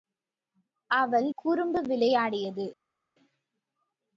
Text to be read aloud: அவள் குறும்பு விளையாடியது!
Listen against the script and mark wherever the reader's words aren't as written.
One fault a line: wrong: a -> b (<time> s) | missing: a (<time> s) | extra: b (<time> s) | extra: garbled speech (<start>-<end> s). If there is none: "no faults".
no faults